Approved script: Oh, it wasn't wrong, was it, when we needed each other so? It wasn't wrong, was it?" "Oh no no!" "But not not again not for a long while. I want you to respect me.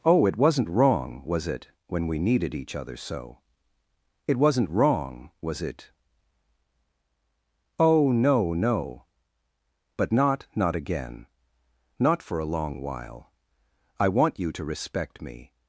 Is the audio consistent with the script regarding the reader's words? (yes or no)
yes